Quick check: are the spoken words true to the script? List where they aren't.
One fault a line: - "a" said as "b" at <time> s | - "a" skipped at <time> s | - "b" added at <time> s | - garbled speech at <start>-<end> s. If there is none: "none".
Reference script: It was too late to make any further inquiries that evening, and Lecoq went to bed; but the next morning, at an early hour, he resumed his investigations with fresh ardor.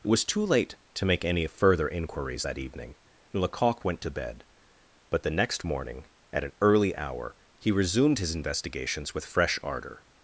none